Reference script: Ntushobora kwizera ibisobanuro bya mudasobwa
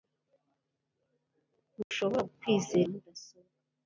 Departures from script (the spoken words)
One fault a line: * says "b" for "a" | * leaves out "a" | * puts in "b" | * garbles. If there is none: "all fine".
* leaves out "ibisobanuro bya"